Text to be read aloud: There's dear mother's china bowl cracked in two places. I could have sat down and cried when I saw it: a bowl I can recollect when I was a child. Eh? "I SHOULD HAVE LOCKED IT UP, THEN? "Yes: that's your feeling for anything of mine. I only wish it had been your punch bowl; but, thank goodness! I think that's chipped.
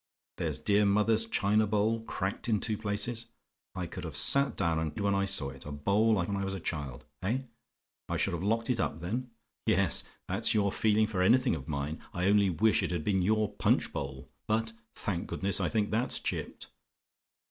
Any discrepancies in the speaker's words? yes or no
yes